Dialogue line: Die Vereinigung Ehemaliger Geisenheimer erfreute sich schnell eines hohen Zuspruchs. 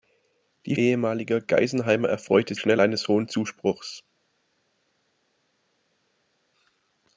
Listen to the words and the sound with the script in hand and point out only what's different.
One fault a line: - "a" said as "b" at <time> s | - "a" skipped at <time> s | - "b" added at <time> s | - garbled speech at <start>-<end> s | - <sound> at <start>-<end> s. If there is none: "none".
- "Vereinigung" skipped at 0.8 s
- "sich" skipped at 2.5 s